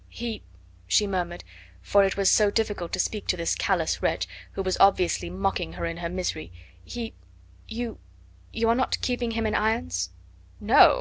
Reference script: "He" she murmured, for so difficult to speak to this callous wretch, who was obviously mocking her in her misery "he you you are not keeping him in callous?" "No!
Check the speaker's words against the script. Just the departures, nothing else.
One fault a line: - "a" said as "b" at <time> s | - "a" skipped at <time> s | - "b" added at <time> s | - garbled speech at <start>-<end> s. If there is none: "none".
- "it was" added at 2.0 s
- "callous" said as "irons" at 9.5 s